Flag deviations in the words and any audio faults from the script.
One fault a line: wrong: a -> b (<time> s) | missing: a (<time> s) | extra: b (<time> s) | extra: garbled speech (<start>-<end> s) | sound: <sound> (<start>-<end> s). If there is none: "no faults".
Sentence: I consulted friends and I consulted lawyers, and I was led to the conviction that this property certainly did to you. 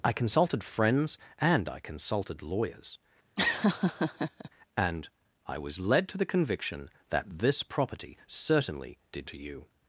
sound: laugh (3.4-4.5 s)